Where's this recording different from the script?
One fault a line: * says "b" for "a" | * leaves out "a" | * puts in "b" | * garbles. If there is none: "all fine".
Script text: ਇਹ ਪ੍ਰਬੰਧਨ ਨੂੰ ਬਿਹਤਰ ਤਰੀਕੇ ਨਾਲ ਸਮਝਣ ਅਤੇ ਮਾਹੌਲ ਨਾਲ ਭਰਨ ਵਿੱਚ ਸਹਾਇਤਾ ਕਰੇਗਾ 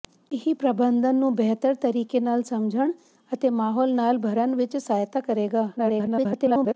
* garbles